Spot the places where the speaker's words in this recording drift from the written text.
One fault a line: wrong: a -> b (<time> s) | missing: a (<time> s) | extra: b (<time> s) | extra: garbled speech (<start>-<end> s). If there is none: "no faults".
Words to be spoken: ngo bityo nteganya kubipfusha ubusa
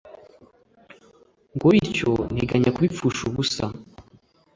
no faults